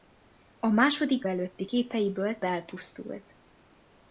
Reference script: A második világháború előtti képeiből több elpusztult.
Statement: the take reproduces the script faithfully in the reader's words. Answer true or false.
false